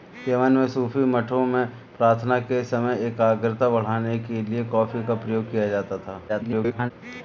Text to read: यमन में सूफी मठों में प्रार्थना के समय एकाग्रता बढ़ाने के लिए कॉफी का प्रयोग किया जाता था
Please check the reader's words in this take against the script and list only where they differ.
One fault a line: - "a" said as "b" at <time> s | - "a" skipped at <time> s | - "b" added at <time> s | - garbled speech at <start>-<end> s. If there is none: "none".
- garbled speech at 6.3-6.9 s